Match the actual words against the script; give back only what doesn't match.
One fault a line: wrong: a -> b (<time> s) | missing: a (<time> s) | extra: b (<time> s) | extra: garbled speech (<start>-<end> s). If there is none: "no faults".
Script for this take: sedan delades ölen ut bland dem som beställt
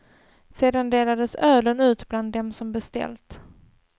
no faults